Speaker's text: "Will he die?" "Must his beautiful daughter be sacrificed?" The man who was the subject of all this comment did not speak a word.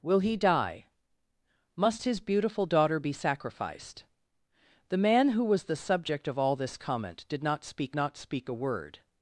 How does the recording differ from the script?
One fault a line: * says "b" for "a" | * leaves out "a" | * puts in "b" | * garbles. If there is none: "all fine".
* puts in "not speak"